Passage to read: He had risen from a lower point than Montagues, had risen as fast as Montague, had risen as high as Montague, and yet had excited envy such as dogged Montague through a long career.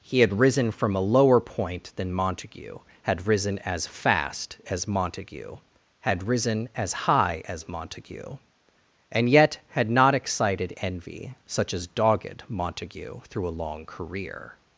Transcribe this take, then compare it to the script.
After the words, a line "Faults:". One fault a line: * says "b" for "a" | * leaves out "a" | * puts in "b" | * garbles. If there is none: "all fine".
He had risen from a lower point than Montague, had risen as fast as Montague, had risen as high as Montague, and yet had not excited envy such as dogged Montague through a long career.
Faults:
* says "Montague" for "Montagues"
* puts in "not"